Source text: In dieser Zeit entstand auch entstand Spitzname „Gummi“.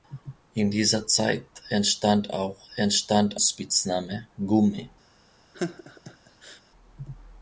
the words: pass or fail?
pass